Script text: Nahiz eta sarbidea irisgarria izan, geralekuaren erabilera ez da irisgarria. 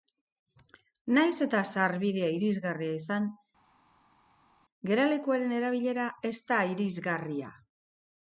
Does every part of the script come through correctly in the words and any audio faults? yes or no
yes